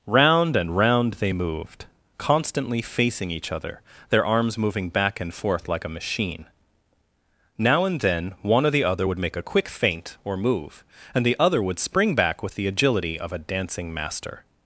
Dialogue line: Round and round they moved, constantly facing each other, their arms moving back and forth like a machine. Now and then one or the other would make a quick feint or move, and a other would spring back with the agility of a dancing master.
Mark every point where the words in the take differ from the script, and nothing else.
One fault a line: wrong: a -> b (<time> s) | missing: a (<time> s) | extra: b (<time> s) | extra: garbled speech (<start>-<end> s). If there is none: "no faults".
wrong: a -> the (11.2 s)